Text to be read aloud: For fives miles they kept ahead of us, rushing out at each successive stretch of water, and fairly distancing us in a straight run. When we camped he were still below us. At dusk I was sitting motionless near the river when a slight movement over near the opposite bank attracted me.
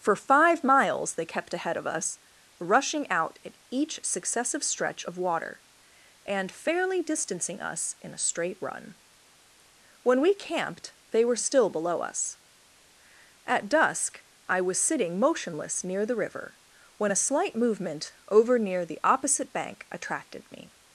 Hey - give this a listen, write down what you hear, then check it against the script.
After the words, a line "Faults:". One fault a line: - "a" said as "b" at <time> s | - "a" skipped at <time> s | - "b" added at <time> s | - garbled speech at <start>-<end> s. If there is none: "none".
For five miles they kept ahead of us, rushing out at each successive stretch of water, and fairly distancing us in a straight run. When we camped they were still below us. At dusk I was sitting motionless near the river when a slight movement over near the opposite bank attracted me.
Faults:
- "fives" said as "five" at 0.1 s
- "he" said as "they" at 11.1 s